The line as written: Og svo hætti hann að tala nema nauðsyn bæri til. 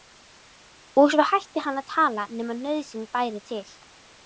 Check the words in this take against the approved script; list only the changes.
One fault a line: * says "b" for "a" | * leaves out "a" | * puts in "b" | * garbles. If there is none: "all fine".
all fine